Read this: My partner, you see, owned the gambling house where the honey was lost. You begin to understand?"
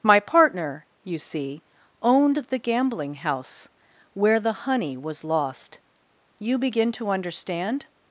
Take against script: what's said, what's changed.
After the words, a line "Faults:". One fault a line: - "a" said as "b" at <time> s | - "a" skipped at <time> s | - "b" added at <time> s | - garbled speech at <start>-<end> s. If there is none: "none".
My partner, you see, owned the gambling house where the honey was lost. You begin to understand?"
Faults:
none